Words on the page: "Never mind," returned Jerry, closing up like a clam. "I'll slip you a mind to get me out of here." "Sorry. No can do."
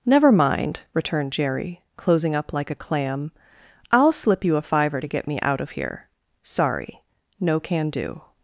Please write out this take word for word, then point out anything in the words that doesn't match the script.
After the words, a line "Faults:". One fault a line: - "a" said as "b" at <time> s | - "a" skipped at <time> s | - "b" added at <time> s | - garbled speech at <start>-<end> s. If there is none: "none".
"Never mind," returned Jerry, closing up like a clam. "I'll slip you a fiver to get me out of here." "Sorry. No can do."
Faults:
- "mind" said as "fiver" at 4.6 s